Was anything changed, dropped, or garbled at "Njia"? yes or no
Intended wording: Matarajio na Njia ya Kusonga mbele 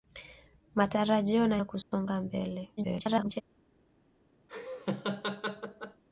yes